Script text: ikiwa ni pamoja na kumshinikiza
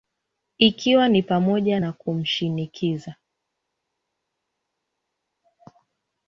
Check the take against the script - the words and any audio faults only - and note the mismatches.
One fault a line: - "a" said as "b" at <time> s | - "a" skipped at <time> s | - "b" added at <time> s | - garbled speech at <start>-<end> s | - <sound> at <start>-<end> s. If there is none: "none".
none